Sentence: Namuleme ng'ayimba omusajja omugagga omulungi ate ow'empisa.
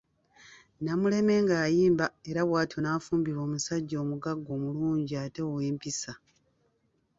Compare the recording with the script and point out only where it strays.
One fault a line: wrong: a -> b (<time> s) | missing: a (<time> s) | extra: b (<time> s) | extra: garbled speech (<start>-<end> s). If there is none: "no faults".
extra: era bw'atyo n'afumbirwa (2.3 s)